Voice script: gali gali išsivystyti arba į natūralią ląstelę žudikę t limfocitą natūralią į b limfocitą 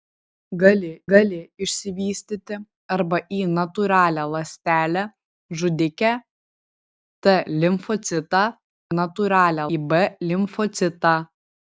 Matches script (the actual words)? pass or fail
pass